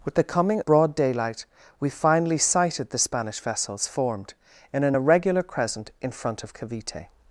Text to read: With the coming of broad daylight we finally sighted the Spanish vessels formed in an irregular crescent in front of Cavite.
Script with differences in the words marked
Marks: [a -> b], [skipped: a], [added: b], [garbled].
With the coming [skipped: of] broad daylight we finally sighted the Spanish vessels formed in an irregular crescent in front of Cavite.